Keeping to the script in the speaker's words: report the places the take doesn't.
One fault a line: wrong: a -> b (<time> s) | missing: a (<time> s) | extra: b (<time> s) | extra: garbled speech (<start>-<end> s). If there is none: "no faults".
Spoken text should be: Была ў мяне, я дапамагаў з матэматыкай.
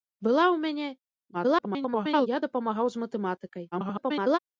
extra: garbled speech (1.3-2.3 s)
extra: garbled speech (3.7-4.4 s)